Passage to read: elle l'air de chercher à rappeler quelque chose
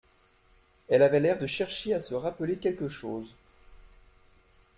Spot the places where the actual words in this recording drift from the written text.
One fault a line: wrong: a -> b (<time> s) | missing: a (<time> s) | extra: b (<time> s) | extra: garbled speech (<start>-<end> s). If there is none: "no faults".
extra: avait (1.0 s)
extra: se (2.0 s)